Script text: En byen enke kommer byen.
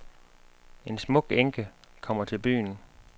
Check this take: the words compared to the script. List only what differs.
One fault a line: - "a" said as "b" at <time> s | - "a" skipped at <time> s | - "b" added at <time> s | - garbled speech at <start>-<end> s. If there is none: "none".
- "byen" said as "smuk" at 1.0 s
- "til" added at 2.2 s